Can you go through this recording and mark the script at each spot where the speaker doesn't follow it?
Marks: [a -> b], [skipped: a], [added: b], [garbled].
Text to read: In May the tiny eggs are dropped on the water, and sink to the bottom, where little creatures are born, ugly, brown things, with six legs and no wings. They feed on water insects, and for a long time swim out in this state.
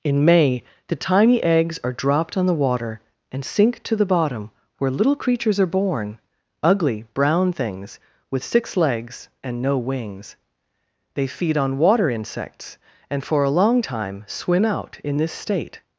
In May the tiny eggs are dropped on the water, and sink to the bottom, where little creatures are born, ugly, brown things, with six legs and no wings. They feed on water insects, and for a long time swim out in this state.